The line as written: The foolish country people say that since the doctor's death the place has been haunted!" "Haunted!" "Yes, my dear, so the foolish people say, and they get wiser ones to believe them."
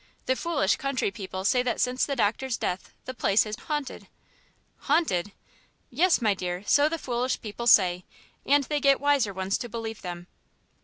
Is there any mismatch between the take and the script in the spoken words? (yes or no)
yes